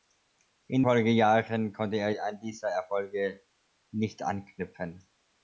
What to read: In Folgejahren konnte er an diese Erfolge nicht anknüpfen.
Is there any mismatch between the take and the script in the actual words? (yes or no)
no